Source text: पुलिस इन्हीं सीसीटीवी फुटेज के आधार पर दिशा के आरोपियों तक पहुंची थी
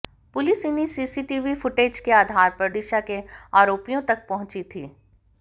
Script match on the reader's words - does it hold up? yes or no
yes